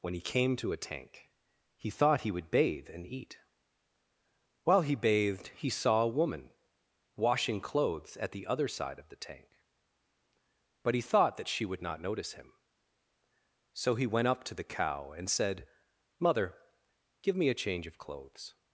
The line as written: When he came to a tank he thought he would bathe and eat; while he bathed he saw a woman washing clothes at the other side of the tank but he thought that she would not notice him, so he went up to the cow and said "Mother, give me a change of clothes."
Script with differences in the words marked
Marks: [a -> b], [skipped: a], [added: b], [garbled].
When he came to a tank he thought he would bathe and eat; while he bathed he saw a woman washing clothes at the other side of the tank but he thought that she would not notice him, so he went up to the cow and said "Mother, give me a change of clothes."